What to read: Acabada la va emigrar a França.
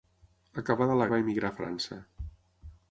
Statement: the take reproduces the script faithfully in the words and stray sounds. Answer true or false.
true